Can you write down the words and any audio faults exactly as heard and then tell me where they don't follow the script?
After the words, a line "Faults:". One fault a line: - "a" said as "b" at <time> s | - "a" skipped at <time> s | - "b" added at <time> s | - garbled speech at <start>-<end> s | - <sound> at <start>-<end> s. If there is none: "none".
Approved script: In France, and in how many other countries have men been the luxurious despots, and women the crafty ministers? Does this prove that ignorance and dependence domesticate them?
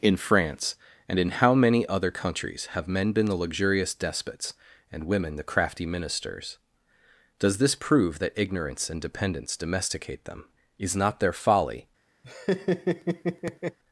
In France, and in how many other countries have men been the luxurious despots, and women the crafty ministers? Does this prove that ignorance and dependence domesticate them? Is not their folly
Faults:
- "Is not their folly" added at 10.8 s
- laugh at 12.2-13.8 s